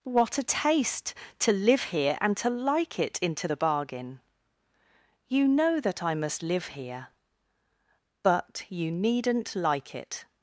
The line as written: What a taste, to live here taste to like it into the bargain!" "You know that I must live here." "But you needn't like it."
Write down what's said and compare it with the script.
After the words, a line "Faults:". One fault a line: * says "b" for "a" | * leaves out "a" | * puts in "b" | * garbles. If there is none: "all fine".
What a taste, to live here and to like it into the bargain!" "You know that I must live here." "But you needn't like it."
Faults:
* says "and" for "taste"